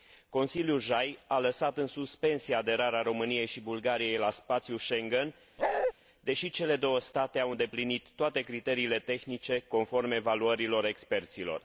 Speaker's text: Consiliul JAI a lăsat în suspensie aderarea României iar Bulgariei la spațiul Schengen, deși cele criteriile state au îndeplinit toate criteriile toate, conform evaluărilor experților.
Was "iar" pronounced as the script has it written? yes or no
no